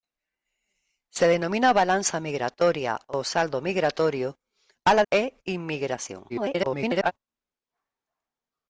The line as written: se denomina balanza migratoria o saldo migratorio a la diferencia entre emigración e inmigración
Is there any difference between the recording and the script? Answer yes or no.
yes